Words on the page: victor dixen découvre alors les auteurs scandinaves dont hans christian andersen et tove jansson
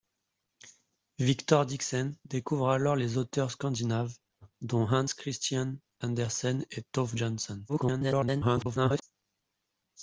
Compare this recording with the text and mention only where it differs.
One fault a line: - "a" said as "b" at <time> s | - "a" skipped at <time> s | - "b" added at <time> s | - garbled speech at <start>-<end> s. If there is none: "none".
- garbled speech at 7.7-9.0 s